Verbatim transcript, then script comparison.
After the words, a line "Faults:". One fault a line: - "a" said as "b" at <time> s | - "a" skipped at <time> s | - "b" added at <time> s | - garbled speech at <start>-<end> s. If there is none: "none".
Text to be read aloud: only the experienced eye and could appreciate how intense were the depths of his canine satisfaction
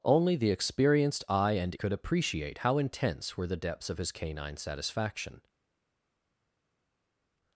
only the experienced eye and could appreciate how intense were the depths of his canine satisfaction
Faults:
none